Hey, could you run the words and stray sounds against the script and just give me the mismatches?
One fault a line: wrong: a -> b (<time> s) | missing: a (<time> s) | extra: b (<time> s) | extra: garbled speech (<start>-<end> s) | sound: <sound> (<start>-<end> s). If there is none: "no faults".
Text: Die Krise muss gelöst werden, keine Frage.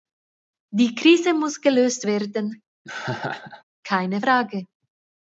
sound: laugh (2.8-3.6 s)